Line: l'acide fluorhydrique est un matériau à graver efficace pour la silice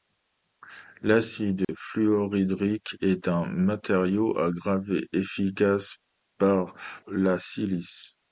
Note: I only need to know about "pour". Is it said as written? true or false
false